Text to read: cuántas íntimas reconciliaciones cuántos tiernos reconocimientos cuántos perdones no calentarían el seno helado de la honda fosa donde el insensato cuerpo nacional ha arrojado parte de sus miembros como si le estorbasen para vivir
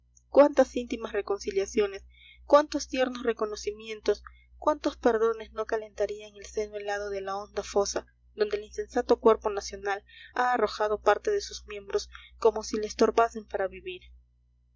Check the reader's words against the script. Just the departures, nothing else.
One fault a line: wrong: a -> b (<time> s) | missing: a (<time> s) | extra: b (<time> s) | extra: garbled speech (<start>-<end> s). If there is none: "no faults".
no faults